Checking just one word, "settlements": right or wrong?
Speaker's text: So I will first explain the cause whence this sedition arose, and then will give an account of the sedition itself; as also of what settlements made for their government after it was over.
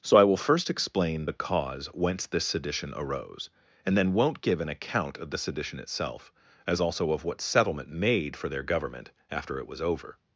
wrong